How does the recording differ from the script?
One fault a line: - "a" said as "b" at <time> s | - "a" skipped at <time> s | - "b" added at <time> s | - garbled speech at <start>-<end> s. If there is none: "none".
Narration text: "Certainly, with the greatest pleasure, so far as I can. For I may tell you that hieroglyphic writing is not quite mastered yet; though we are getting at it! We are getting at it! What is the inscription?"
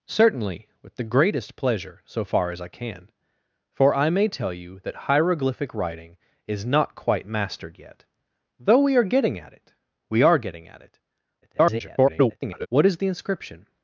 - garbled speech at 11.4-12.7 s